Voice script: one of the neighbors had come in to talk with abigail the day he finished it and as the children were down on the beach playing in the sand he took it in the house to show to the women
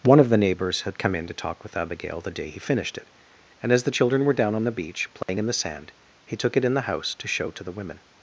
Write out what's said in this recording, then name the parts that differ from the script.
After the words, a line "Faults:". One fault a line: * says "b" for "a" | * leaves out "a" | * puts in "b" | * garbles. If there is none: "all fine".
one of the neighbors had come in to talk with abigail the day he finished it and as the children were down on the beach playing in the sand he took it in the house to show to the women
Faults:
all fine